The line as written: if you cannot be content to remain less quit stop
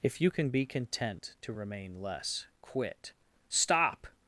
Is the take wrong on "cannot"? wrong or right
wrong